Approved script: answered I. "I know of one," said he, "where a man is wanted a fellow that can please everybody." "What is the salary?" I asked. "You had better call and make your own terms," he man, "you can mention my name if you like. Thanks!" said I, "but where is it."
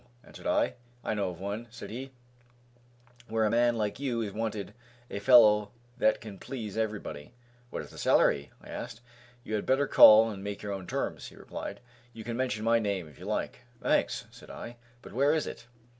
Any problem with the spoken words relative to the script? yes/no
yes